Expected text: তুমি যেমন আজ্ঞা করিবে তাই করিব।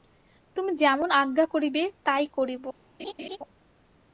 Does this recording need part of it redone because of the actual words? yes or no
no